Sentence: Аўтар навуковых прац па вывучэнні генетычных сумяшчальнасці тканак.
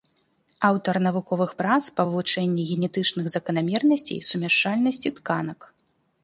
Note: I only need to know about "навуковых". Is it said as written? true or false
true